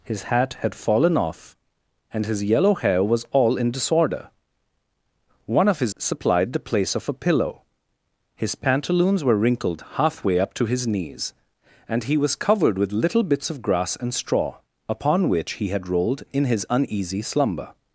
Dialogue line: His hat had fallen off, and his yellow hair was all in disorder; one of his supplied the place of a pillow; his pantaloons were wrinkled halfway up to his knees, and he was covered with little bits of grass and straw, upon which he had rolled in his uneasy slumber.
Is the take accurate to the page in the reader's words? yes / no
yes